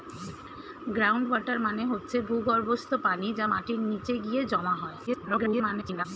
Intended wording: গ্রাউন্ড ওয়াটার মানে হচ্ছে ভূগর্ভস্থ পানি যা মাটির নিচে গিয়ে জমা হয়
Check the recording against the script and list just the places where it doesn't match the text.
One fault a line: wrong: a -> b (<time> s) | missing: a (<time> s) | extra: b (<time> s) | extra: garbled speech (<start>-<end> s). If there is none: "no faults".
extra: garbled speech (5.1-6.1 s)